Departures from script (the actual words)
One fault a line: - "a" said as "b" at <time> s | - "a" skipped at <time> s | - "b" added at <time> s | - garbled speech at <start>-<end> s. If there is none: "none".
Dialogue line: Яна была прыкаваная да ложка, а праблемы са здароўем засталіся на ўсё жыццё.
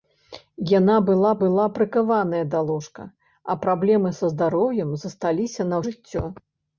- "была" added at 1.4 s
- "ўсё" skipped at 5.8 s